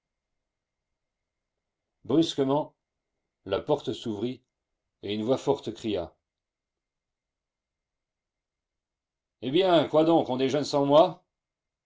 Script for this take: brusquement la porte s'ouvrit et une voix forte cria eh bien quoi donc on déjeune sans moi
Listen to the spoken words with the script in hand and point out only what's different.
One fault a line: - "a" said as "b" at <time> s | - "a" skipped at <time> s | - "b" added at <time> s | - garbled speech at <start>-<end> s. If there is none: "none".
none